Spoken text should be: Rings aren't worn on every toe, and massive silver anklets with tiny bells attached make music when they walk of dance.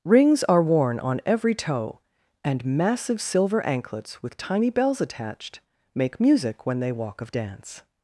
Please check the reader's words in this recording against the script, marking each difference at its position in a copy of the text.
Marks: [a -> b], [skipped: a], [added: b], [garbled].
Rings [aren't -> are] worn on every toe, and massive silver anklets with tiny bells attached make music when they walk of dance.